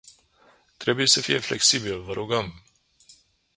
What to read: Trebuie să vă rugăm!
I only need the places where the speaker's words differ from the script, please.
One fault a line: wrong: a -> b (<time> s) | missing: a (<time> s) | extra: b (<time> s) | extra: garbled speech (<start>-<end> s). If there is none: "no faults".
extra: fie flexibil (1.2 s)